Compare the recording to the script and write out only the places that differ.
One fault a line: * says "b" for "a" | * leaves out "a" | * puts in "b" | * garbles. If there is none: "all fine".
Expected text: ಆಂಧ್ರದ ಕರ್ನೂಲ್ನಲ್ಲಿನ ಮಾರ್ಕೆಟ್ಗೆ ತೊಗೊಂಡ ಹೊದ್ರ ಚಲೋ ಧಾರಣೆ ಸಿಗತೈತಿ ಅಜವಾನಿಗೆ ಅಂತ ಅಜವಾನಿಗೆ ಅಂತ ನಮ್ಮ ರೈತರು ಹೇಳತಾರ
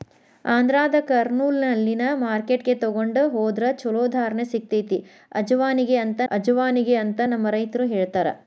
all fine